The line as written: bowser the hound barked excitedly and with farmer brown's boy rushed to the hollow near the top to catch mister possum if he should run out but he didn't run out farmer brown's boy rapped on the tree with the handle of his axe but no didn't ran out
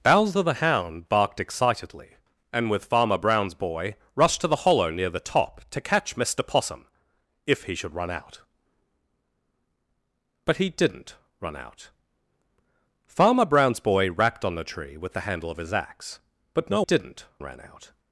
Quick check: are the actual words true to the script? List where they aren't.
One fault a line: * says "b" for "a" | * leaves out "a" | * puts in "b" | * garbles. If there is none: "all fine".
all fine